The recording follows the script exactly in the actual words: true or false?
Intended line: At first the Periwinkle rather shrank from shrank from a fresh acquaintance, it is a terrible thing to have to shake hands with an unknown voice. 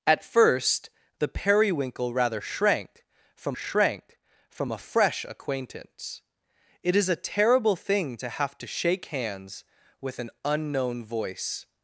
true